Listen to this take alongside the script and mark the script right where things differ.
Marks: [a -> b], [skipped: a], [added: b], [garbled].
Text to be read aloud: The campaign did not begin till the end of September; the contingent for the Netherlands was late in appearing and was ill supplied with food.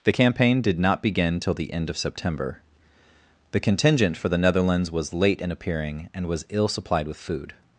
The campaign did not begin till the end of September; the contingent for the Netherlands was late in appearing and was ill supplied with food.